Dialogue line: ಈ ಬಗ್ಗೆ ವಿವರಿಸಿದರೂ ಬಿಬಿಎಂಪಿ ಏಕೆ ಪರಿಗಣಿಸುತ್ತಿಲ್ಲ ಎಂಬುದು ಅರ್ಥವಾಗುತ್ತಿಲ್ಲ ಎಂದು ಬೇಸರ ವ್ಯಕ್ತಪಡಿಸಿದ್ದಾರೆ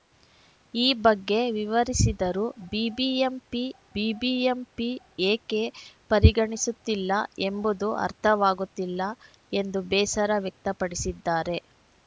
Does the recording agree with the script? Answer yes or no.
no